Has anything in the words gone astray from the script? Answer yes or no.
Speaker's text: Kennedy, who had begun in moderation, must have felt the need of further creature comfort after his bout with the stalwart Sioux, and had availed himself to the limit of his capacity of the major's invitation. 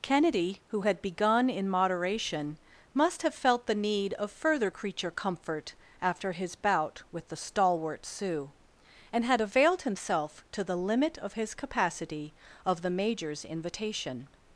no